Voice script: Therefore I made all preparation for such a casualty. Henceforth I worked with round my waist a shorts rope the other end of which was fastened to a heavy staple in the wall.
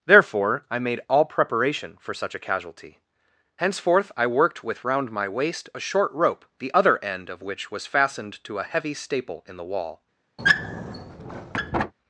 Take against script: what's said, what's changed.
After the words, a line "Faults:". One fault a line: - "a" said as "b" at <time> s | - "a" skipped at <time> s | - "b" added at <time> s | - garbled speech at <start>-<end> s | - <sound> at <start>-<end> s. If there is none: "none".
Therefore I made all preparation for such a casualty. Henceforth I worked with round my waist a short rope the other end of which was fastened to a heavy staple in the wall.
Faults:
- "shorts" said as "short" at 5.8 s
- squeak at 10.4-11.9 s